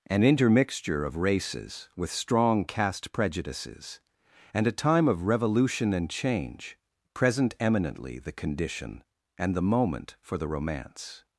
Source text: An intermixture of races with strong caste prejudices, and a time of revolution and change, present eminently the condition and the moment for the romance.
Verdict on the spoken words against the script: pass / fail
pass